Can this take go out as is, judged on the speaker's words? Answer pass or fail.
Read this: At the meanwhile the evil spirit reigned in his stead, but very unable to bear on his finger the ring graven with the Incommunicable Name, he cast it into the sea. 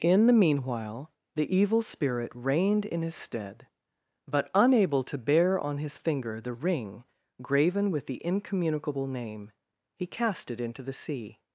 fail